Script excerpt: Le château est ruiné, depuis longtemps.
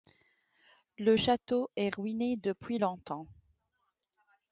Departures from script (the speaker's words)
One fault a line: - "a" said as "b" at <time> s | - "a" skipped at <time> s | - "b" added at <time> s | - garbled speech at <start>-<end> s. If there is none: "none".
none